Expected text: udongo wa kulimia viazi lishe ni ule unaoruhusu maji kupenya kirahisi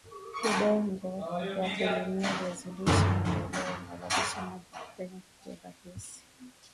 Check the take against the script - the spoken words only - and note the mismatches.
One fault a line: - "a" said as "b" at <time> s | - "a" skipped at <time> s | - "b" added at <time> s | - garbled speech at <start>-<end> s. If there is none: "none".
none